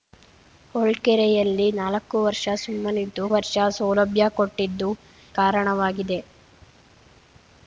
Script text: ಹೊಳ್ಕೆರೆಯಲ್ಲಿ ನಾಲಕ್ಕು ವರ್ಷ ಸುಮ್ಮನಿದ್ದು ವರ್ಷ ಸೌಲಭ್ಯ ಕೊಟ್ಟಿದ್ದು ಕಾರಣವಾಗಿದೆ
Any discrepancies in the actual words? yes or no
no